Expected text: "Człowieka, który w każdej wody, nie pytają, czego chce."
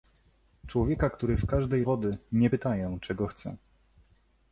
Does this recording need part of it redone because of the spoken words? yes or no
no